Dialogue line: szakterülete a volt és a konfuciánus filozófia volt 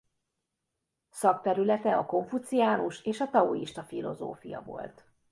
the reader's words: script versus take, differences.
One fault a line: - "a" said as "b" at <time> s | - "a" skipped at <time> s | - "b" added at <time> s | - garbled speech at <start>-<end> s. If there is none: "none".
- "volt" said as "konfuciánus" at 2.0 s
- "konfuciánus" said as "taoista" at 3.3 s